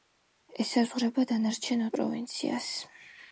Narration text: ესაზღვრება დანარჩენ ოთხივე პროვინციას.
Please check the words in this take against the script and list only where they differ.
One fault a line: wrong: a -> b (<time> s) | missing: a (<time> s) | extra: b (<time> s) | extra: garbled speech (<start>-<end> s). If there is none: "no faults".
missing: ოთხივე (1.9 s)